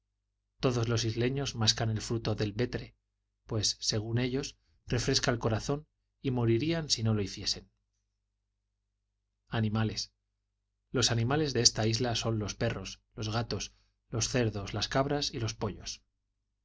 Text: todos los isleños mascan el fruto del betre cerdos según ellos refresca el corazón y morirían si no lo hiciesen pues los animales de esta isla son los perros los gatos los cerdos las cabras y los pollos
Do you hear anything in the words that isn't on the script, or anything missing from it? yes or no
yes